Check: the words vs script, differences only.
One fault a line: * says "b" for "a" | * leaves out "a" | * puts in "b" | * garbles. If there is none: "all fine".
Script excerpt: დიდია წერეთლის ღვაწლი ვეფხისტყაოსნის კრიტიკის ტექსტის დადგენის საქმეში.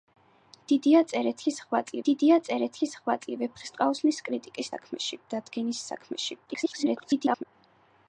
* puts in "დიდია წერეთლის ღვაწლი"
* says "საქმეში" for "ტექსტის"
* garbles